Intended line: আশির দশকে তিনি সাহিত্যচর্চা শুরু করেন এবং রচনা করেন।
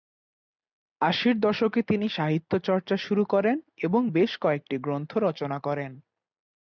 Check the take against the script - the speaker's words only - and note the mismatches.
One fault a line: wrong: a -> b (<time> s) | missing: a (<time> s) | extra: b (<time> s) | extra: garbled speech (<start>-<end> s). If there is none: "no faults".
extra: বেশ কয়েকটি গ্রন্থ (4.1 s)